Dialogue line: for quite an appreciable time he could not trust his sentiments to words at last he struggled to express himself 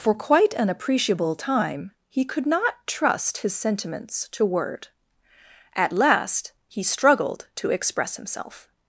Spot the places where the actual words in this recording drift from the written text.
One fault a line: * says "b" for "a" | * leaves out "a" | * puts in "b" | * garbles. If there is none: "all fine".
* says "word" for "words"